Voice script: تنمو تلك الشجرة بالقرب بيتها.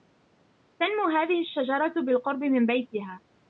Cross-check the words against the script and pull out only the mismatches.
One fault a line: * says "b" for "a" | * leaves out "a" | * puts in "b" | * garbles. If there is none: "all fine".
* says "هذه" for "تلك"
* puts in "من"